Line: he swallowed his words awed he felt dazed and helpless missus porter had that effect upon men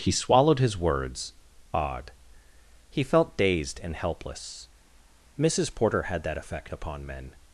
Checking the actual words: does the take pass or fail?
pass